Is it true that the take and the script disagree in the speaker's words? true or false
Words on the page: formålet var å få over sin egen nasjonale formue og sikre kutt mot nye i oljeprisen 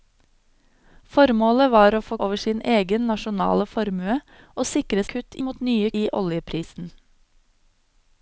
false